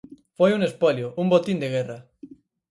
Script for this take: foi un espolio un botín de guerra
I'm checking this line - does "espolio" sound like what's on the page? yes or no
yes